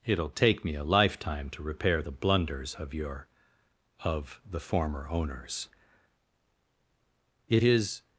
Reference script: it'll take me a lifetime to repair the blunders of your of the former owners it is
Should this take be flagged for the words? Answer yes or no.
no